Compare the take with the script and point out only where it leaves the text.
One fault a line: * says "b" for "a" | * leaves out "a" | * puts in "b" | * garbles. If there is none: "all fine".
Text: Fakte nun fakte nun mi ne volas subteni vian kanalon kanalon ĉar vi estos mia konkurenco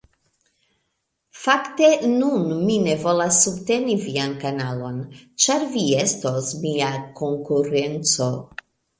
* leaves out "fakte nun"
* leaves out "kanalon"